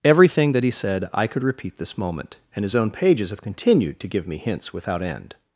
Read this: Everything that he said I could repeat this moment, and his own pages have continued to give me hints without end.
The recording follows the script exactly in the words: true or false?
true